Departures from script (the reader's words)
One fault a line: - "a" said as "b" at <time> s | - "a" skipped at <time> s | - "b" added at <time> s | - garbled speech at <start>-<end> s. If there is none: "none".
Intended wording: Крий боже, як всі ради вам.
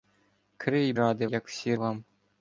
- "боже" said as "ради" at 0.9 s
- "ради" skipped at 1.7 s